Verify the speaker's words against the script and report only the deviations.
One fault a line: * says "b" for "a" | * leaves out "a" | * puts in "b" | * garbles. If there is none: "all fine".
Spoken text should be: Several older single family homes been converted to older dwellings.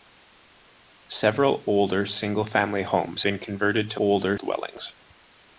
all fine